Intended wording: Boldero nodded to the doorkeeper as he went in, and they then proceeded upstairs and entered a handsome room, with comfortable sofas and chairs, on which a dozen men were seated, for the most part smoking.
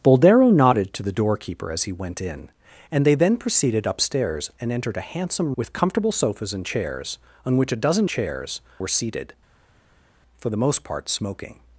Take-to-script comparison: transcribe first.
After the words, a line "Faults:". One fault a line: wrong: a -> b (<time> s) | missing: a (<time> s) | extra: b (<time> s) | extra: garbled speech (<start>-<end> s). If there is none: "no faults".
Boldero nodded to the doorkeeper as he went in, and they then proceeded upstairs and entered a handsome with comfortable sofas and chairs, on which a dozen chairs were seated, for the most part smoking.
Faults:
missing: room (5.5 s)
wrong: men -> chairs (8.1 s)